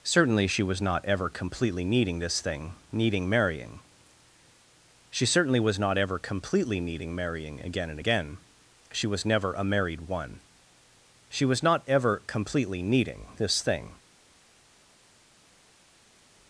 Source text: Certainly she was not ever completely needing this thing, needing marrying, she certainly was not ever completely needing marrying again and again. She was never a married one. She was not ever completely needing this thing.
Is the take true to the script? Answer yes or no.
yes